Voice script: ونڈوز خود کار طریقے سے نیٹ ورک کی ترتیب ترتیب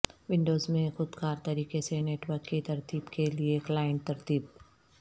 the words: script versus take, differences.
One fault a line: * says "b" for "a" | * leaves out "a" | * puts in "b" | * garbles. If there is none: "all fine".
* puts in "میں"
* puts in "کے لئے کلائنٹ"